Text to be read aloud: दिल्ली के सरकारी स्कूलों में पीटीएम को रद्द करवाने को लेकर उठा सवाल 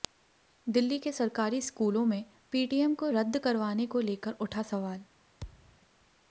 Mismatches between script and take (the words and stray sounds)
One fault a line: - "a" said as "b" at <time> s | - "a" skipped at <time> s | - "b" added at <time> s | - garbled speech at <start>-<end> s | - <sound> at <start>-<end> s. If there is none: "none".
- thud at 5.4-5.8 s